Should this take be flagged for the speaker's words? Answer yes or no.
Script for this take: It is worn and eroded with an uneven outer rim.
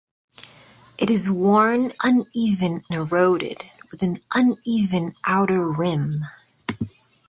yes